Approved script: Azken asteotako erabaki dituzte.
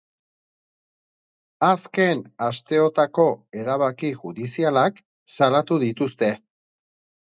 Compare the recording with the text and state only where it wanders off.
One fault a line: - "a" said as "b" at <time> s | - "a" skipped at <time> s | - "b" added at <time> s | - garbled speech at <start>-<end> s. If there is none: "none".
- "judizialak salatu" added at 4.2 s